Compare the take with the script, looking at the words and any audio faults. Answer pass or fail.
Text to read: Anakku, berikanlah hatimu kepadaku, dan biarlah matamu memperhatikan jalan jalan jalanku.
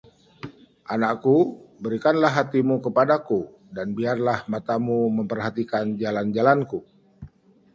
fail